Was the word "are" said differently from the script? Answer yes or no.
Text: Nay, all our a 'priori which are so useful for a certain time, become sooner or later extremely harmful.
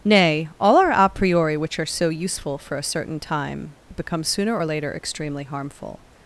no